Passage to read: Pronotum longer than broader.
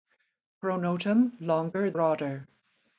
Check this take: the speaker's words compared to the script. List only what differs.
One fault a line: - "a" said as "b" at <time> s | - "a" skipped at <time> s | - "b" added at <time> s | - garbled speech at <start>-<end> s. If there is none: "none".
- "than" skipped at 1.9 s